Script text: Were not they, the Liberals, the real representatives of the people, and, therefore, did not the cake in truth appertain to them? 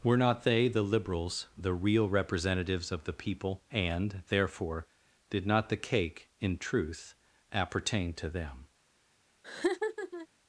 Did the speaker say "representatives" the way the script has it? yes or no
yes